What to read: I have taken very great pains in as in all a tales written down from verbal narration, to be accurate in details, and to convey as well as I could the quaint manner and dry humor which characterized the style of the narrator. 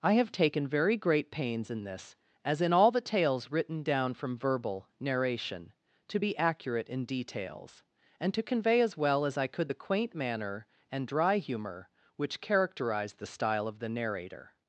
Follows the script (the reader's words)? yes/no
no